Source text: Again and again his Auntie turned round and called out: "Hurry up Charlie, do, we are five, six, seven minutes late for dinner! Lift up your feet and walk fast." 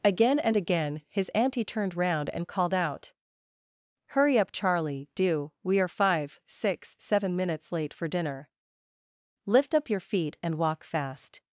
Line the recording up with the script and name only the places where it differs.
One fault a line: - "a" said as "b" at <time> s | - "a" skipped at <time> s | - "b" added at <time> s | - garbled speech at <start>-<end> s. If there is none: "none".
none